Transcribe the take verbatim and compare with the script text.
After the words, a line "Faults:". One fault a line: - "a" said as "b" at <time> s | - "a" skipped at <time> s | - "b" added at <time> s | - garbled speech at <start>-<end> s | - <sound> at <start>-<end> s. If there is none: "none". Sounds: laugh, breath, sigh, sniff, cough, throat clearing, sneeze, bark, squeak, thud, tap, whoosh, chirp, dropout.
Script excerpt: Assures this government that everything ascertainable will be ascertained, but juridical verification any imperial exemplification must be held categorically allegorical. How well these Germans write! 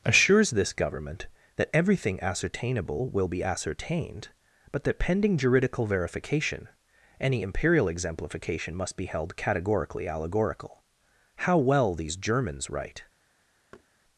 Assures this government that everything ascertainable will be ascertained, but that pending juridical verification any imperial exemplification must be held categorically allegorical. How well these Germans write!
Faults:
- "that pending" added at 4.8 s
- thud at 13.7-13.9 s